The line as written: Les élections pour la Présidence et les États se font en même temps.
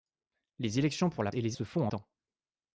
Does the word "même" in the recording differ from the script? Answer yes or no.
yes